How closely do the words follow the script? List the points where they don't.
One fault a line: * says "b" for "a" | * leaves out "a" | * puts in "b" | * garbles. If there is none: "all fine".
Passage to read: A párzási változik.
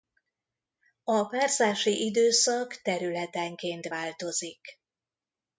* puts in "időszak területenként"